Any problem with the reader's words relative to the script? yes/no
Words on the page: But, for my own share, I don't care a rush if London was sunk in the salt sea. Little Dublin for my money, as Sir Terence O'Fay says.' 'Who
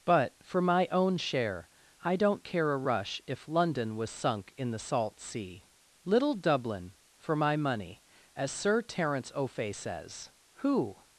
no